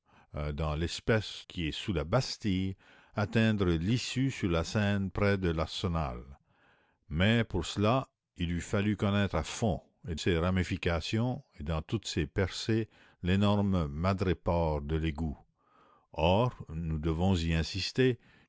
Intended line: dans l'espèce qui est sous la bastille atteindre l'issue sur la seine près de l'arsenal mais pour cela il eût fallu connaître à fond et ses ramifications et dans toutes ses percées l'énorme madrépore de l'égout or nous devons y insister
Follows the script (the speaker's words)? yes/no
yes